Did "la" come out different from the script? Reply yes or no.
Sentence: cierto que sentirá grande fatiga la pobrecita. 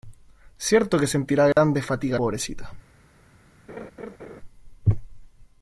yes